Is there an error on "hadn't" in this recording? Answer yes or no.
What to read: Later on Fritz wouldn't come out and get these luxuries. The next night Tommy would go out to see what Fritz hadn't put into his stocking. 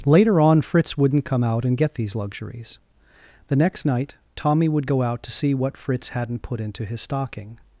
no